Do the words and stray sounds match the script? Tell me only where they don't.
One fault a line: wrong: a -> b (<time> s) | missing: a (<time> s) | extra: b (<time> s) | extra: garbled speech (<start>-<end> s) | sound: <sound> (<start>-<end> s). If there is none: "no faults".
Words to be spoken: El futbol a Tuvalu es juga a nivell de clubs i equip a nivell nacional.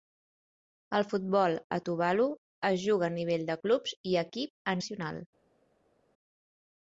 missing: nivell (4.8 s)